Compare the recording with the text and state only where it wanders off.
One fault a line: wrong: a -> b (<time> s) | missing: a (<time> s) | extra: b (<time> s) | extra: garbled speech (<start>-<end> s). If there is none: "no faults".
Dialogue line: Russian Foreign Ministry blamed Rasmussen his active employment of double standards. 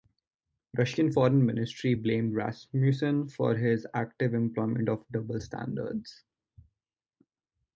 extra: for (3.3 s)